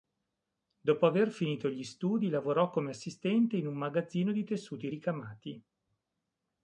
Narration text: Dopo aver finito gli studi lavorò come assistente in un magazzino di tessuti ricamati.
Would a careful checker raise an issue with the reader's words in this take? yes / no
no